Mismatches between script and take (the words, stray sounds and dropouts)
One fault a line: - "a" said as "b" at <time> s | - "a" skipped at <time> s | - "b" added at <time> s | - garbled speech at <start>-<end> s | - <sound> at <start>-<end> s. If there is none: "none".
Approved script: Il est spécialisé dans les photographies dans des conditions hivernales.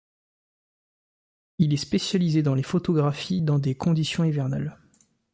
none